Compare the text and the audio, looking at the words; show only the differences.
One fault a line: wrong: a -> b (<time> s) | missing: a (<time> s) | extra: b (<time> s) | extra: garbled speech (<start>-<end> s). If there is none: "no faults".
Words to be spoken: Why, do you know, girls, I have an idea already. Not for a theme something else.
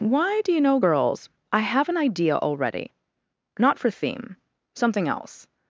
missing: a (3.9 s)